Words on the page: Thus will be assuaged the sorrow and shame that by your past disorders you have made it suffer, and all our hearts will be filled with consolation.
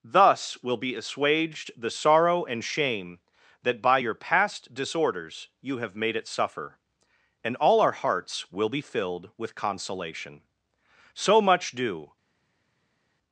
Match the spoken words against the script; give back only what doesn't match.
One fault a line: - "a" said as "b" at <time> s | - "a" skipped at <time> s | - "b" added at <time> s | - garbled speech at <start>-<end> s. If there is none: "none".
- "So much do" added at 11.1 s